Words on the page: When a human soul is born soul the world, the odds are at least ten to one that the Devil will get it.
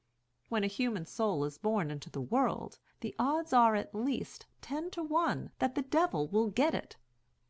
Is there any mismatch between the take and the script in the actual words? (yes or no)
yes